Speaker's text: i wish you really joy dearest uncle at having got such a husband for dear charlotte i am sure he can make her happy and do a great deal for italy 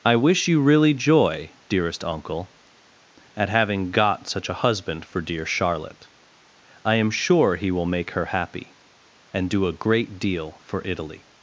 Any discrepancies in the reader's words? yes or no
yes